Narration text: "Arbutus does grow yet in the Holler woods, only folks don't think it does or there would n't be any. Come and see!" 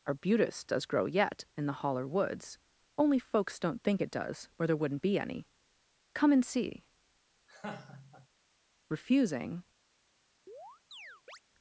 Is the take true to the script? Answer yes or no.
no